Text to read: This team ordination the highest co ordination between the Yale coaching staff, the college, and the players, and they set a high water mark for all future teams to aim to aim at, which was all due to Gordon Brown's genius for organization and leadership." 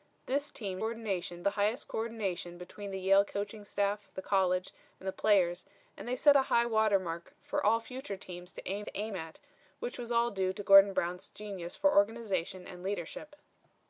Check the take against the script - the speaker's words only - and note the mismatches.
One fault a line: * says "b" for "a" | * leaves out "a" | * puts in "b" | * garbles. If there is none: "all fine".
all fine